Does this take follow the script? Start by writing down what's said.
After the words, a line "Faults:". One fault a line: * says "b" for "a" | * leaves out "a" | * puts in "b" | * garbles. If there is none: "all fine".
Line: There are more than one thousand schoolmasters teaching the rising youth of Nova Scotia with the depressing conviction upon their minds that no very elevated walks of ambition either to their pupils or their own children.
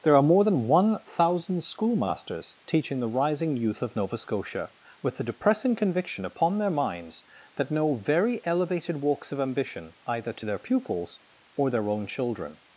There are more than one thousand schoolmasters teaching the rising youth of Nova Scotia with the depressing conviction upon their minds that no very elevated walks of ambition either to their pupils or their own children.
Faults:
all fine